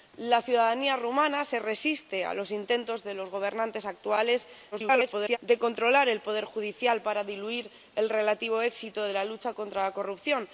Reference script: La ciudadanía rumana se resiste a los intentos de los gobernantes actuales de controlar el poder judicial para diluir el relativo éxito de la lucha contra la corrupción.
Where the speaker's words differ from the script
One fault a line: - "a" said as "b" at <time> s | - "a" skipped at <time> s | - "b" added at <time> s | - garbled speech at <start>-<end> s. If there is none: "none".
- garbled speech at 4.7-5.4 s